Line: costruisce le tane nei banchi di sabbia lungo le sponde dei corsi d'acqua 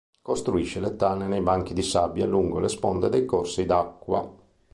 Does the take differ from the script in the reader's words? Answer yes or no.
no